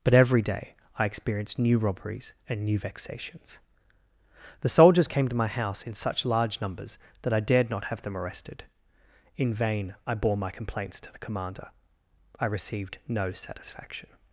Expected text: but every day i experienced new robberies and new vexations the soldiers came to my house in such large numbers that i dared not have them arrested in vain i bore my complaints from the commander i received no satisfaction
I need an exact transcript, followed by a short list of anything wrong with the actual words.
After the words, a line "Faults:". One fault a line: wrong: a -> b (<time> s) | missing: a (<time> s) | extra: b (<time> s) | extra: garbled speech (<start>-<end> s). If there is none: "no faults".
but every day i experienced new robberies and new vexations the soldiers came to my house in such large numbers that i dared not have them arrested in vain i bore my complaints to the commander i received no satisfaction
Faults:
wrong: from -> to (11.0 s)